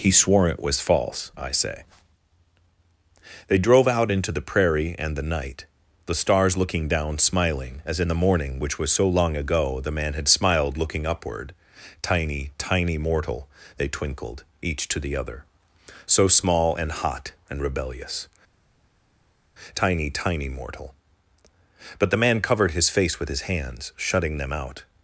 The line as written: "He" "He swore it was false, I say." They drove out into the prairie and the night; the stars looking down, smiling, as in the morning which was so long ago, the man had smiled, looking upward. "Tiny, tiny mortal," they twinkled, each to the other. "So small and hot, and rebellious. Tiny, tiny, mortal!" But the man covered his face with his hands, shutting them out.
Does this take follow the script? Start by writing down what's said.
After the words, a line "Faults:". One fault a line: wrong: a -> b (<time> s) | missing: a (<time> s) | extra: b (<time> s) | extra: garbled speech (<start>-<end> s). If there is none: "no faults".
"He" swore it was false, I say." They drove out into the prairie and the night; the stars looking down, smiling, as in the morning which was so long ago, the man had smiled, looking upward. "Tiny, tiny mortal," they twinkled, each to the other. "So small and hot, and rebellious. Tiny, tiny, mortal!" But the man covered his face with his hands, shutting them out.
Faults:
missing: He (0.1 s)